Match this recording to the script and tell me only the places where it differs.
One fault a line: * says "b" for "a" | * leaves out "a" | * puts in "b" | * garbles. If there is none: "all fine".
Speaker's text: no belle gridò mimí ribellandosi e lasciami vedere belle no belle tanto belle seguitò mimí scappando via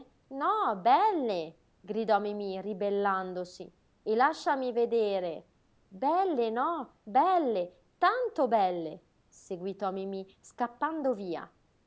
all fine